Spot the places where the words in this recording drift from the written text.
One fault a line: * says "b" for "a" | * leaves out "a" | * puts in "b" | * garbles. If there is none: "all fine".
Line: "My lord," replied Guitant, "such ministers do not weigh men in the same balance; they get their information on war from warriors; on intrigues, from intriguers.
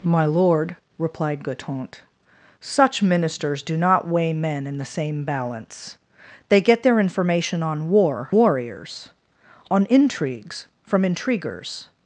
* leaves out "from"